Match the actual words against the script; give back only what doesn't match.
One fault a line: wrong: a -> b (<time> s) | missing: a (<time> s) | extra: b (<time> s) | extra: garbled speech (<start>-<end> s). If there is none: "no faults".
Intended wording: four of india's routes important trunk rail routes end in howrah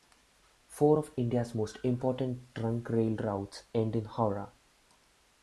wrong: routes -> most (1.5 s)